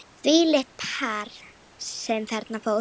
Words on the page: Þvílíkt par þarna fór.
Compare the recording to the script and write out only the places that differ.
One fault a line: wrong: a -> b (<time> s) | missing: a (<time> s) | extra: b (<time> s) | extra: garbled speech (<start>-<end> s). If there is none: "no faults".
extra: sem (1.9 s)